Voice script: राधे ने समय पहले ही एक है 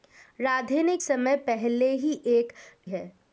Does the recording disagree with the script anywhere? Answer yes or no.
no